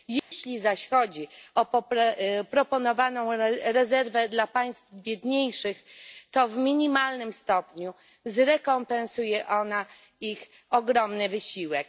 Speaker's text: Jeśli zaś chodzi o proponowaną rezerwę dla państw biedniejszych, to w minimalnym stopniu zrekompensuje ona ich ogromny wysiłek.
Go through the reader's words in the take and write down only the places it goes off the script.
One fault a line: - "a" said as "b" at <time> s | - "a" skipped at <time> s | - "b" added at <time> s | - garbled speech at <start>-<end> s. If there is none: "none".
none